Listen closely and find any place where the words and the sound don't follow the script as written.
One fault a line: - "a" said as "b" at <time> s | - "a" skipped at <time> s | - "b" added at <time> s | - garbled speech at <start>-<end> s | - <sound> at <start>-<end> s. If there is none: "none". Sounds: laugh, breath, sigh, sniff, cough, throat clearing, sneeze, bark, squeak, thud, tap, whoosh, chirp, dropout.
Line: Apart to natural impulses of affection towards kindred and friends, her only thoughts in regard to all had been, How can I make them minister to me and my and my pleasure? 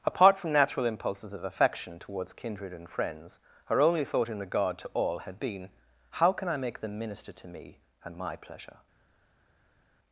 - "to" said as "from" at 0.4 s
- "thoughts" said as "thought" at 4.0 s
- "and my" skipped at 8.3 s